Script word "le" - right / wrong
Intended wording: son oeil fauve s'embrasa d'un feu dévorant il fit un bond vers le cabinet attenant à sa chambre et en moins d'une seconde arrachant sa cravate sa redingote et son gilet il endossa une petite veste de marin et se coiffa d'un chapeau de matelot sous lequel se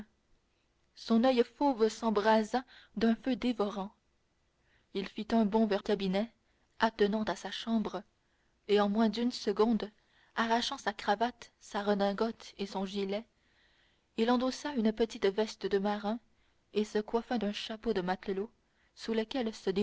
wrong